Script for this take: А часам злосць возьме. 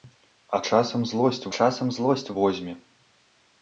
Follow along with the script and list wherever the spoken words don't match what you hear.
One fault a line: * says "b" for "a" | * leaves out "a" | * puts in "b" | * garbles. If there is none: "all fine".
* puts in "часам злосць"